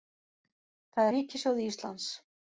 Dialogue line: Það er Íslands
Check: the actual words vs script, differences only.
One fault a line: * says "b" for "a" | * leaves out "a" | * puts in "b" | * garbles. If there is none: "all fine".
* puts in "ríkissjóði"